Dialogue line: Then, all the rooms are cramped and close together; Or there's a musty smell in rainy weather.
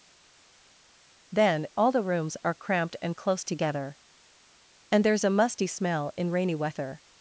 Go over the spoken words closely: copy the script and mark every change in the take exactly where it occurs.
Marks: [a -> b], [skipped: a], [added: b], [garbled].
Then, all the rooms are cramped and close together; [Or -> And] there's a musty smell in rainy weather.